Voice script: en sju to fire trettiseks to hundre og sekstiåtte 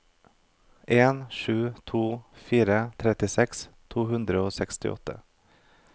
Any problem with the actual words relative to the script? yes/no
no